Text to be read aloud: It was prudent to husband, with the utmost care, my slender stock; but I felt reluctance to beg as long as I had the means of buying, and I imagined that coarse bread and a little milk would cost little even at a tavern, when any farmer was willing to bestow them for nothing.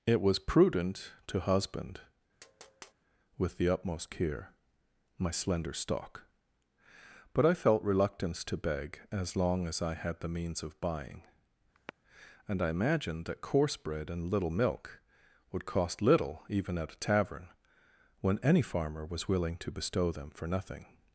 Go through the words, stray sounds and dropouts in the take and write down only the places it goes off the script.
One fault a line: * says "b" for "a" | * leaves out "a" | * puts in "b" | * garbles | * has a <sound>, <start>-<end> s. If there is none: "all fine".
* has a tap, 2.4-2.9 s
* has a sigh, 11.7-11.9 s
* leaves out "a"